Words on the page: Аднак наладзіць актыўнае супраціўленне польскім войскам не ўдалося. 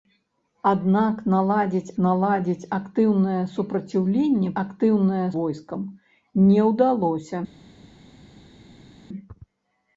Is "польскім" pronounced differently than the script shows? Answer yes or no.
yes